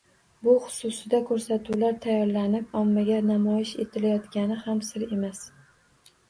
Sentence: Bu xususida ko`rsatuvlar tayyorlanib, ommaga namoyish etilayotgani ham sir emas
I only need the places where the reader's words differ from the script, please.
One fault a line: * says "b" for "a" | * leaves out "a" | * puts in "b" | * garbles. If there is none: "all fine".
all fine